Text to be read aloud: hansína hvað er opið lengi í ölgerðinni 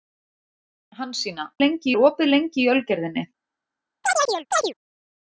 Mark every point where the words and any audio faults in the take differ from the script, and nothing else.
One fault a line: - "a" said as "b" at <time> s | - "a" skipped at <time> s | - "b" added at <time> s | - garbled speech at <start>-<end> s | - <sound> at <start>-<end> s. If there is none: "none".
- "hvað" said as "lengi" at 1.6 s
- chirp at 4.0-4.7 s